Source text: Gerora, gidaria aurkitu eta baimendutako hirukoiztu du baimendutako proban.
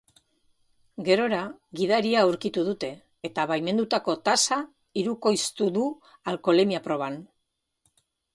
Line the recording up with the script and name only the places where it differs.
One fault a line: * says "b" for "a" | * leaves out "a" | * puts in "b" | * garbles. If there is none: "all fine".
* puts in "dute"
* puts in "tasa"
* says "alkoholemia" for "baimendutako"